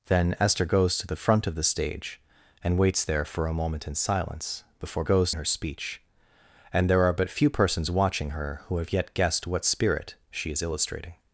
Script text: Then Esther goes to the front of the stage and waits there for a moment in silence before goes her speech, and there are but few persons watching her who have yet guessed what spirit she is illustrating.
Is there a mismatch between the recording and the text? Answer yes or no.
no